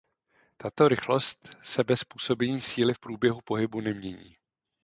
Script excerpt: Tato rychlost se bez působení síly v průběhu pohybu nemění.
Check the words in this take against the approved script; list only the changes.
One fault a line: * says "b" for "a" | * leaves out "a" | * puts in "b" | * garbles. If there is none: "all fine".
all fine